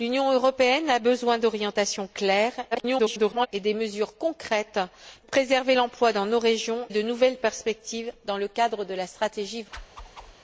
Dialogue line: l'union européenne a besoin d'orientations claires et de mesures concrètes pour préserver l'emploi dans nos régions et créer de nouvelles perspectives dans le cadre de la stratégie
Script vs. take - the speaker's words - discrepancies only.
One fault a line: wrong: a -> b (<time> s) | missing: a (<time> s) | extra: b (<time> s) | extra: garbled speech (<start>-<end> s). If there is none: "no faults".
extra: garbled speech (2.7-3.5 s)
missing: pour (4.8 s)
missing: et créer (6.9 s)